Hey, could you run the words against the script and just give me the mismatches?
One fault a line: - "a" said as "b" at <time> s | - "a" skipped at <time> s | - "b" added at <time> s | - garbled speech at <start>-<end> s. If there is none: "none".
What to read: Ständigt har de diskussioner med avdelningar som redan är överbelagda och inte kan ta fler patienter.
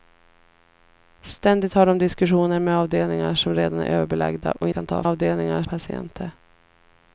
- "inte" skipped at 4.7 s
- "fler" said as "avdelningar" at 5.1 s